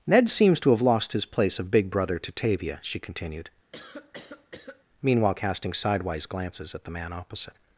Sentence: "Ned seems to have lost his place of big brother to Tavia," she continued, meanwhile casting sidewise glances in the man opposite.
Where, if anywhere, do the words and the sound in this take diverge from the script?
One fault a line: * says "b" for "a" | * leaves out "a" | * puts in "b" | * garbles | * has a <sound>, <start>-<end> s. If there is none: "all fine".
* has a cough, 3.7-4.8 s
* says "at" for "in"